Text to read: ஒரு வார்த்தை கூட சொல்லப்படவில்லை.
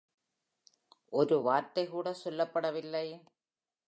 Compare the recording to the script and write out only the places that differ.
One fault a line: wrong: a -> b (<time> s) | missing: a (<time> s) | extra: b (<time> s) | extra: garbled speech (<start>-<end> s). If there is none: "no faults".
no faults